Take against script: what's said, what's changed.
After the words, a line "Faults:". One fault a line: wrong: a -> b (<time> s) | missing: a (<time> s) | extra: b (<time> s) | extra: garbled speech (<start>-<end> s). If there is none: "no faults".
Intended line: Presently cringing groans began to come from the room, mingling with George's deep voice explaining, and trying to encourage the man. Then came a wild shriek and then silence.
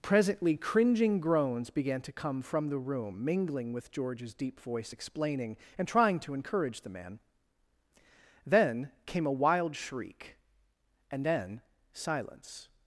Presently cringing groans began to come from the room, mingling with George's deep voice explaining, and trying to encourage the man. Then came a wild shriek and then silence.
Faults:
no faults